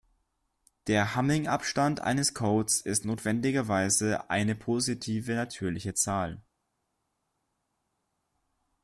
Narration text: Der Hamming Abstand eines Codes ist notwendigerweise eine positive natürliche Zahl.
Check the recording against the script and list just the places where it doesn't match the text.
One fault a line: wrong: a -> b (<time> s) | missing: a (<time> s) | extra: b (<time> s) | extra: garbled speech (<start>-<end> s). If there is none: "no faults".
no faults